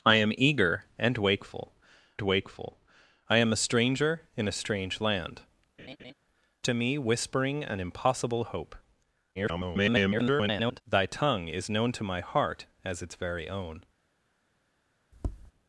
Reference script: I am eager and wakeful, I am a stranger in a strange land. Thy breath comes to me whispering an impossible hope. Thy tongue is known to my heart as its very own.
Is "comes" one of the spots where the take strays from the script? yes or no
yes